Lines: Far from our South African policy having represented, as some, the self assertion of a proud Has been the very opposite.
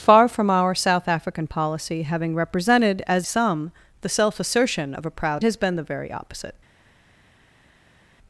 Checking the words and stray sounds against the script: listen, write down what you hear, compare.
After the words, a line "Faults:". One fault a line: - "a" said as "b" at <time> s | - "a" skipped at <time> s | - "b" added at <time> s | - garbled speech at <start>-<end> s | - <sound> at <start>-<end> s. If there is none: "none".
Far from our South African policy having represented, as some, the self assertion of a proud Has been the very opposite.
Faults:
none